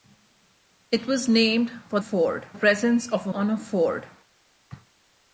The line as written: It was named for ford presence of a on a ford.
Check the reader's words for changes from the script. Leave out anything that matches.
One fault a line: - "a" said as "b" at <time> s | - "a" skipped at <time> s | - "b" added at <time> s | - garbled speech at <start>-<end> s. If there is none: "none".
none